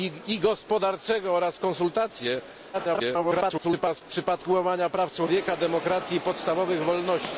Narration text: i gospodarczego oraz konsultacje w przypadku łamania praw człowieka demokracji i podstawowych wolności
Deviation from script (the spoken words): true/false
true